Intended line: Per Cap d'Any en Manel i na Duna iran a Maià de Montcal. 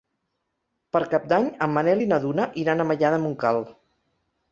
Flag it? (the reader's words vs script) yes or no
no